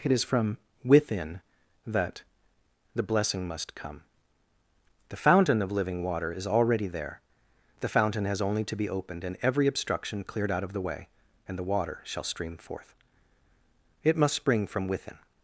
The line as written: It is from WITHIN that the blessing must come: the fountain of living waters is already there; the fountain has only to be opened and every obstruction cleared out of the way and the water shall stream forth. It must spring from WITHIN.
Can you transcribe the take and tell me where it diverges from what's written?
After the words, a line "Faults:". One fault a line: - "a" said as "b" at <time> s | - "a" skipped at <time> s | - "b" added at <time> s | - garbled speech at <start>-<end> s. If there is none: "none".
It is from WITHIN that the blessing must come: the fountain of living water is already there; the fountain has only to be opened and every obstruction cleared out of the way and the water shall stream forth. It must spring from WITHIN.
Faults:
- "waters" said as "water" at 6.0 s